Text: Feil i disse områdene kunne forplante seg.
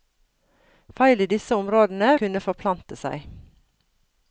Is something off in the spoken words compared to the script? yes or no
no